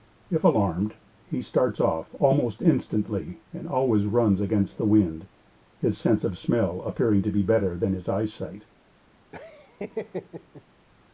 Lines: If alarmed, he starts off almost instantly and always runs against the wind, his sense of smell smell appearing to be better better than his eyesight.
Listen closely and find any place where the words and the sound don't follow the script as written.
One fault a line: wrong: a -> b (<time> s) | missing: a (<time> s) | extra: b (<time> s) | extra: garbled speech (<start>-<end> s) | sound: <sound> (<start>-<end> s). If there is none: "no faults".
missing: smell (6.8 s)
missing: better (7.8 s)
sound: laugh (9.3-10.6 s)